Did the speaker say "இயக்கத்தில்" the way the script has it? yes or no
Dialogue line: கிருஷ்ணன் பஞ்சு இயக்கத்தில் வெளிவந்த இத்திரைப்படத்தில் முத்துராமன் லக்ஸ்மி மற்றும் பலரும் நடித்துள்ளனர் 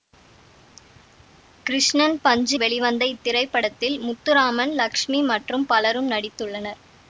no